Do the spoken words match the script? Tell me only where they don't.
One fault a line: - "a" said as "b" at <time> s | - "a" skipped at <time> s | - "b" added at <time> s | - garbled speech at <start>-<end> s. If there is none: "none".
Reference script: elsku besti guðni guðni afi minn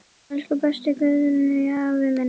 - "guðni" skipped at 1.7 s